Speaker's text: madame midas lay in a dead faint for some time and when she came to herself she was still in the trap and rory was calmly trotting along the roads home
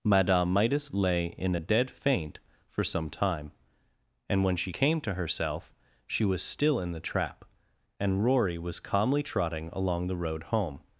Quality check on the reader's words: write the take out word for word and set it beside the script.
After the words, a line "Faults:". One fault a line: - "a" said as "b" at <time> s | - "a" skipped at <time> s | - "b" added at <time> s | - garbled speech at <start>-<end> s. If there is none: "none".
madame midas lay in a dead faint for some time and when she came to herself she was still in the trap and rory was calmly trotting along the road home
Faults:
- "roads" said as "road" at 10.2 s